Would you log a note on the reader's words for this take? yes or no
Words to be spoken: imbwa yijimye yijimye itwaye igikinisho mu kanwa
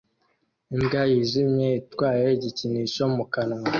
yes